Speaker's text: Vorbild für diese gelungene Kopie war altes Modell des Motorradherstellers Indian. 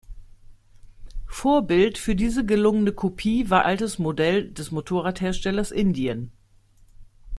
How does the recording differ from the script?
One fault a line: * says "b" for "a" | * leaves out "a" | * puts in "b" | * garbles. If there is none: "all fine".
all fine